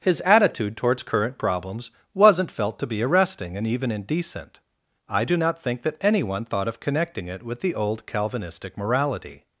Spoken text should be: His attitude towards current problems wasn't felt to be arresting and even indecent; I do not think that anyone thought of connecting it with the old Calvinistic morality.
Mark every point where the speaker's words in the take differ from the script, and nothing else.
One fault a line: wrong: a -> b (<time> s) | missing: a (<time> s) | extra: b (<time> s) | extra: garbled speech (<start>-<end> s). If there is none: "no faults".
no faults